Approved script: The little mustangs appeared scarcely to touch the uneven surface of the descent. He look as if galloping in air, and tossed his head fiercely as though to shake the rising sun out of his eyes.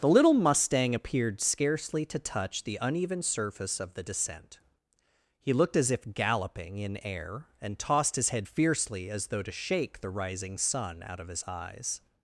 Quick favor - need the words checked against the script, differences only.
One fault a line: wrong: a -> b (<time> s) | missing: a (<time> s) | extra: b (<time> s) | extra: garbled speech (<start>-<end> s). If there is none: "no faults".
wrong: mustangs -> mustang (0.3 s)
wrong: look -> looked (5.5 s)